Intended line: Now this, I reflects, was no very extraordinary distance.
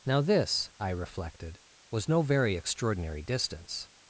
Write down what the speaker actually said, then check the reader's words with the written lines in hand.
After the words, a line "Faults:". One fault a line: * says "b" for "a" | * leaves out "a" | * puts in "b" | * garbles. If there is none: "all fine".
Now this, I reflected, was no very extraordinary distance.
Faults:
* says "reflected" for "reflects"